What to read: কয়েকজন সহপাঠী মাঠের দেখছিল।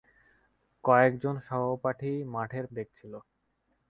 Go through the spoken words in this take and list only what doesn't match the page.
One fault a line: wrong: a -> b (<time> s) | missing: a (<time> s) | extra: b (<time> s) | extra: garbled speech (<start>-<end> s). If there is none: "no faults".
no faults